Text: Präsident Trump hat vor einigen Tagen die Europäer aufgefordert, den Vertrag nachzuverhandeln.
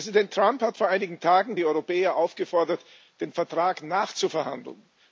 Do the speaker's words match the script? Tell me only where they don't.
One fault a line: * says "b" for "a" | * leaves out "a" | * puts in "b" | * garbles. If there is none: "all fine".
all fine